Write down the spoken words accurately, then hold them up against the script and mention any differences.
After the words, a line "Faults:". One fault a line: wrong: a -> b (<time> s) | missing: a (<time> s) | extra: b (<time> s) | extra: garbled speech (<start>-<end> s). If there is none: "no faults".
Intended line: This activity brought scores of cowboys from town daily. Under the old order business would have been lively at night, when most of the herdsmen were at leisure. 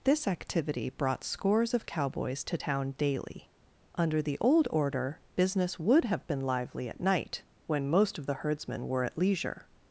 This activity brought scores of cowboys to town daily. Under the old order business would have been lively at night, when most of the herdsmen were at leisure.
Faults:
wrong: from -> to (2.5 s)